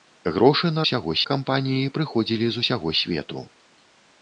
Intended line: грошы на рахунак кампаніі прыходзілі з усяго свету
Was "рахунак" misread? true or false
true